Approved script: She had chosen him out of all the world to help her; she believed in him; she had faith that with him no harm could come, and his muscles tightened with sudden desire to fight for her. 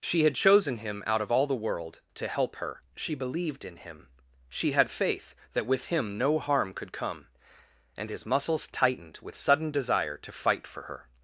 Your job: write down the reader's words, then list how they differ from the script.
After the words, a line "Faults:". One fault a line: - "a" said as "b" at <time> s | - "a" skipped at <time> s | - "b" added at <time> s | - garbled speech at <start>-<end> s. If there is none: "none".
She had chosen him out of all the world to help her; she believed in him; she had faith that with him no harm could come, and his muscles tightened with sudden desire to fight for her.
Faults:
none